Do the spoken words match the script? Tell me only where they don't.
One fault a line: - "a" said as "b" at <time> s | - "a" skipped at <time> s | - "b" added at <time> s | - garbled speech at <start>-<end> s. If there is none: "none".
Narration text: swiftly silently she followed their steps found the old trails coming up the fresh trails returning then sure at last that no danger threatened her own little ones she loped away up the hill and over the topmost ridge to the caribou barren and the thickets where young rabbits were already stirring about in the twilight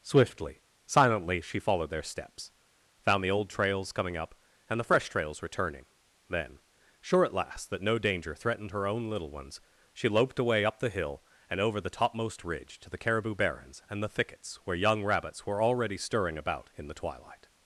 - "and" added at 4.7 s
- "barren" said as "barrens" at 13.3 s